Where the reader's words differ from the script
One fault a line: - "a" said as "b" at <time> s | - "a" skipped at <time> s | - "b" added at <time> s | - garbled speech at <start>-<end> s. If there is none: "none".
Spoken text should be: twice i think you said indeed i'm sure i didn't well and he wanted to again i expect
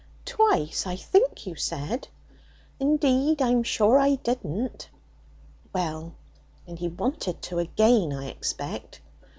none